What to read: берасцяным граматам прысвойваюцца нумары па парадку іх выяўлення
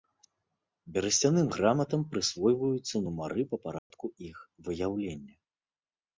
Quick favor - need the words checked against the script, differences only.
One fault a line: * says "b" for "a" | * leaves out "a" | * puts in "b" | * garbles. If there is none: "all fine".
all fine